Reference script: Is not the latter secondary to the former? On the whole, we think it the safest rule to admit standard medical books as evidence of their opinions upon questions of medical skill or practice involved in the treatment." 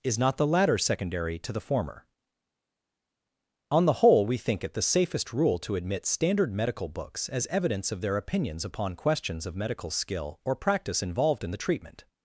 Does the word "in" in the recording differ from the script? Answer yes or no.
no